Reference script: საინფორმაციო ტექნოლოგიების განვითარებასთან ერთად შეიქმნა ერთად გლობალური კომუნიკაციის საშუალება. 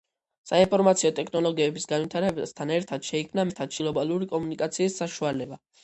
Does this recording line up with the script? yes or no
yes